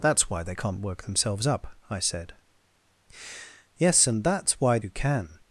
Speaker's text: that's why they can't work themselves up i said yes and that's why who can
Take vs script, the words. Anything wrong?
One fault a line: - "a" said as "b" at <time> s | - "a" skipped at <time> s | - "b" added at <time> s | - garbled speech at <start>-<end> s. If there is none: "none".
none